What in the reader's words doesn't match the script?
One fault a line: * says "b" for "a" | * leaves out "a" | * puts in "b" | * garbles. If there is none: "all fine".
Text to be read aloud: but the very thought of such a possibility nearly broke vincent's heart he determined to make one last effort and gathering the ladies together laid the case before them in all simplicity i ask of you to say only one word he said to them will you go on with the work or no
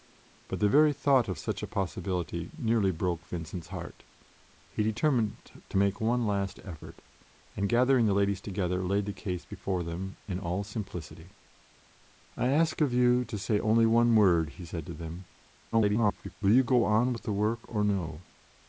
* garbles